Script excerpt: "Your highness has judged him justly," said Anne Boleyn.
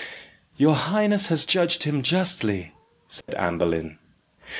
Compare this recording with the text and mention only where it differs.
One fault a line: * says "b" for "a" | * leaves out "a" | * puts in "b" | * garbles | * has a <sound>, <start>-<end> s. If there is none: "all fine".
* has a dropout, 3.2-3.3 s